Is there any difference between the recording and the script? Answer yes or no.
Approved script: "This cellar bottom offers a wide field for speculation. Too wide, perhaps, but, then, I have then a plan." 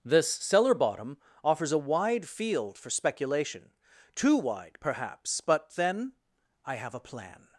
yes